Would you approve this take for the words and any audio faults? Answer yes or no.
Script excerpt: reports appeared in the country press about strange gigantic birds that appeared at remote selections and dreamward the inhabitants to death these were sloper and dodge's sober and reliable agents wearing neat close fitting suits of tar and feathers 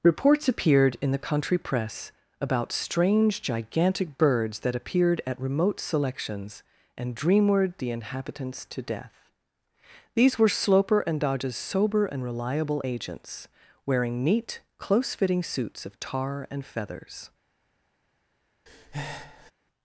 no